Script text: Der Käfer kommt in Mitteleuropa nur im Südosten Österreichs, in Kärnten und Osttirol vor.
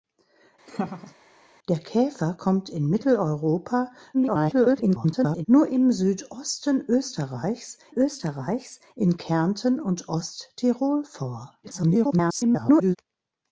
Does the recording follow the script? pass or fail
fail